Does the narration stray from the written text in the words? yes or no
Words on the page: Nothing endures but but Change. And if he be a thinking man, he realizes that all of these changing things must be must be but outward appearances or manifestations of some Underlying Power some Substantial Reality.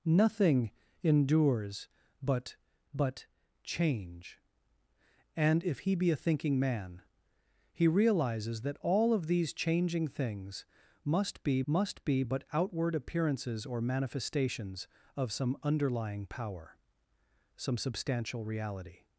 no